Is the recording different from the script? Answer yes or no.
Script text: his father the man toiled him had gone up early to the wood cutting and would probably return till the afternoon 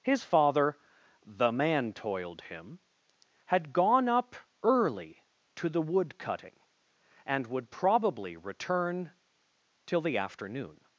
no